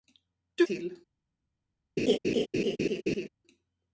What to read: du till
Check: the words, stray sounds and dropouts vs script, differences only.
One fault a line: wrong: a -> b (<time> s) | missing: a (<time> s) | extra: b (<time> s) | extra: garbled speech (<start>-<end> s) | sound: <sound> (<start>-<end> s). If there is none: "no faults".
sound: laugh (2.0-3.3 s)